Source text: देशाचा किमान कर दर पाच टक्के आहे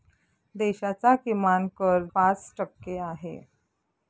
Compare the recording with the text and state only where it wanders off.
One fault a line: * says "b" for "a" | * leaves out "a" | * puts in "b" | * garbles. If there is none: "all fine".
* leaves out "दर"